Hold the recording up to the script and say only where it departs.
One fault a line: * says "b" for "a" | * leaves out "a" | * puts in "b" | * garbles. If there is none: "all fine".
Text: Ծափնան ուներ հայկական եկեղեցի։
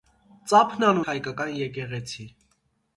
* leaves out "ուներ"